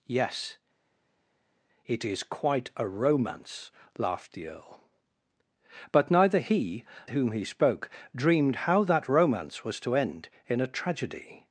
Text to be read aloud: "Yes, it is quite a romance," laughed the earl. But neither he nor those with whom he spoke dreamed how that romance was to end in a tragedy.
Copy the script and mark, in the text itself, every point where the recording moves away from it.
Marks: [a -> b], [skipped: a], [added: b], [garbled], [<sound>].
"Yes, it is quite a romance," laughed the earl. But neither he [skipped: nor those with] whom he spoke dreamed how that romance was to end in a tragedy.